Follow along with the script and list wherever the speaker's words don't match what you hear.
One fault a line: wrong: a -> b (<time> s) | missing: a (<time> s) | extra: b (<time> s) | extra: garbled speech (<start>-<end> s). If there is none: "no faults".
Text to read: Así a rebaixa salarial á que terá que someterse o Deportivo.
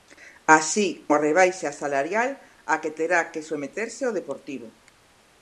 no faults